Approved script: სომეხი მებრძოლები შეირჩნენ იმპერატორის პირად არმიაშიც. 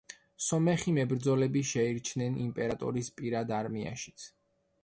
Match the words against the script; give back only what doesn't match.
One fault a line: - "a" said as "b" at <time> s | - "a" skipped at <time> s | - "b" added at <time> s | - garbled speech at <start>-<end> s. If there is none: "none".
none